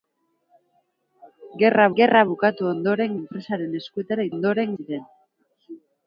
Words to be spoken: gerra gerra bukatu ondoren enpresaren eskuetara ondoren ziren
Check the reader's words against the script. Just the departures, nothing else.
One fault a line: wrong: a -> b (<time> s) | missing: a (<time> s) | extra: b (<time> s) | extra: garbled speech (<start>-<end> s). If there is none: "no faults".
no faults